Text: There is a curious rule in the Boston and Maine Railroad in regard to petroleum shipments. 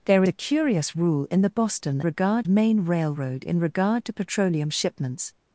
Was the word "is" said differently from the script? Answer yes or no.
yes